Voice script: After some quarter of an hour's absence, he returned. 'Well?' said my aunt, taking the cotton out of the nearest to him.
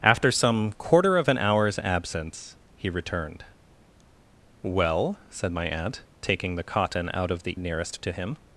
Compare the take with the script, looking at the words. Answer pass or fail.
pass